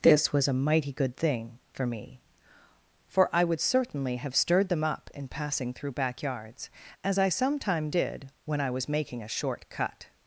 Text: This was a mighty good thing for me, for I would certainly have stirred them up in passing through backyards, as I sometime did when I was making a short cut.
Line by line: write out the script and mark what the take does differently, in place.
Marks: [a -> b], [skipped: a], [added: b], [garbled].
This was a mighty good thing for me, for I would certainly have stirred them up in passing through backyards, as I sometime did when I was making a short cut.